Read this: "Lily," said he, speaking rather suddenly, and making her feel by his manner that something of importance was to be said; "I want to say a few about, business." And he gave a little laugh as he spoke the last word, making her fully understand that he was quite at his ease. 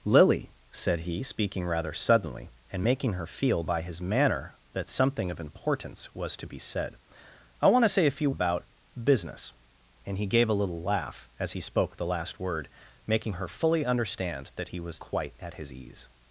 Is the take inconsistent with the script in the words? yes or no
no